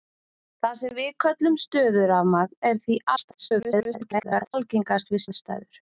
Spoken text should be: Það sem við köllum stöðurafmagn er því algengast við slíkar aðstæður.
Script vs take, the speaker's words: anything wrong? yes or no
yes